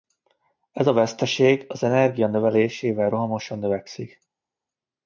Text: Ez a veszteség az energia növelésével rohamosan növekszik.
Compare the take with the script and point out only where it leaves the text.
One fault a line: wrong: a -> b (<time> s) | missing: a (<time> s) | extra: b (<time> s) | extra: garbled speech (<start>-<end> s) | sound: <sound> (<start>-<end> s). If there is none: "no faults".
no faults